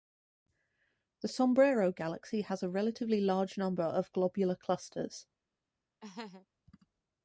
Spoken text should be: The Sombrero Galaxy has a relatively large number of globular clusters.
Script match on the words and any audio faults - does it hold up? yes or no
no